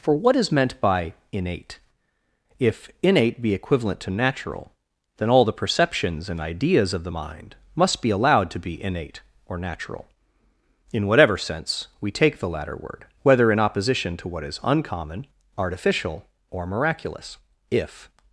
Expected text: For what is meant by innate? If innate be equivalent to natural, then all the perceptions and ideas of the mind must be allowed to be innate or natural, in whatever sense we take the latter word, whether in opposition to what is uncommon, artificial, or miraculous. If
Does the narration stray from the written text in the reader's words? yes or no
no